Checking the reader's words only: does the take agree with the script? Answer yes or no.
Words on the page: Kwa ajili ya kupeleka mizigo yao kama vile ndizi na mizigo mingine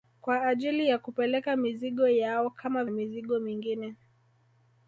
no